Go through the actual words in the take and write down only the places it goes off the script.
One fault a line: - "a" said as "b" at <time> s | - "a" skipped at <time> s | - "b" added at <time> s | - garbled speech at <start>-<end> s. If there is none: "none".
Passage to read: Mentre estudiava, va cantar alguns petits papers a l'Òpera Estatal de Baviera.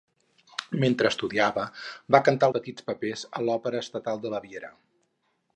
- "alguns" skipped at 2.5 s